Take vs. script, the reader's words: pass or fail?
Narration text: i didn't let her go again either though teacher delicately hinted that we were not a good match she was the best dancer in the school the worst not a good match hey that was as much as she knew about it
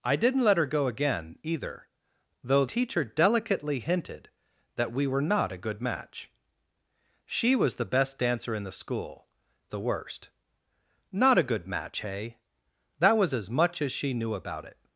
pass